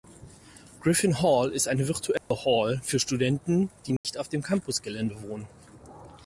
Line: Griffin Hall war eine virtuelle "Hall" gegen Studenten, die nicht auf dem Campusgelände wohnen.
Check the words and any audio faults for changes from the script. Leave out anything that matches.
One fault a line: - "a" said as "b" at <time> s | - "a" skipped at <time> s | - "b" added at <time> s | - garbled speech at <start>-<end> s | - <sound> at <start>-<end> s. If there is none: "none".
- "war" said as "ist" at 1.5 s
- dropout at 2.2-2.3 s
- "gegen" said as "für" at 2.8 s
- dropout at 4.0-4.0 s